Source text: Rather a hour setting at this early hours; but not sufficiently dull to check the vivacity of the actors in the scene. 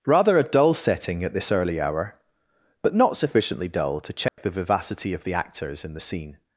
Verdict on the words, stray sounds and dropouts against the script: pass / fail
fail